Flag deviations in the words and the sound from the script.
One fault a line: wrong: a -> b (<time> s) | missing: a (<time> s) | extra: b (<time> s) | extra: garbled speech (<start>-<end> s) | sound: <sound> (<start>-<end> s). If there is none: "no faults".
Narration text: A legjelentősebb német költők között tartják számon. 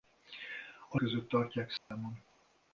missing: legjelentősebb német költők (1.0 s)
sound: dropout (1.8-1.9 s)